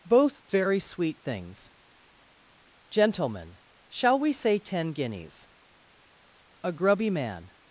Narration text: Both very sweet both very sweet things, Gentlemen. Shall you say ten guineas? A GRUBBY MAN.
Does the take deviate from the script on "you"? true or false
true